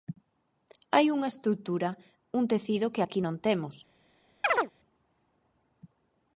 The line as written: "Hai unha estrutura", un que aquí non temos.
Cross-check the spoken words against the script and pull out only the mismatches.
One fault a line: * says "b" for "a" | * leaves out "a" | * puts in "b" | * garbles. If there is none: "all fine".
* puts in "tecido"